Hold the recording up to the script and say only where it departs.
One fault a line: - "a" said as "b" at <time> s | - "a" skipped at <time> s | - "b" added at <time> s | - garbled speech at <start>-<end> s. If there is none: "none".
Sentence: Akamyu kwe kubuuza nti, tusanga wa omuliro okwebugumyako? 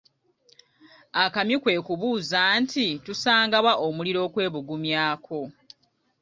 none